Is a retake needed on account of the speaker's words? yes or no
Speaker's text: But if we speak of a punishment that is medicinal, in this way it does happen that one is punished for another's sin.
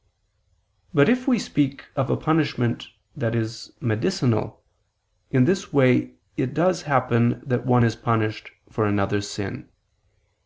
no